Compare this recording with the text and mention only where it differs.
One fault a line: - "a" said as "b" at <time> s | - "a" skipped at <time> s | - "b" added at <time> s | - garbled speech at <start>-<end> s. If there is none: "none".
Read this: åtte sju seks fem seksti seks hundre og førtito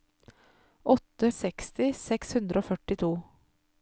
- "sju seks fem" skipped at 1.3 s